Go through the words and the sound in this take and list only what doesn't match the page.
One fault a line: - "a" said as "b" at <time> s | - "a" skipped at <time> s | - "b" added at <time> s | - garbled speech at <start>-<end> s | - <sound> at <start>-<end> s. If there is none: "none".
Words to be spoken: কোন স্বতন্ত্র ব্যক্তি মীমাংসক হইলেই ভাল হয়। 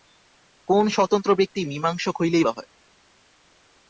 - "ভাল" skipped at 2.5 s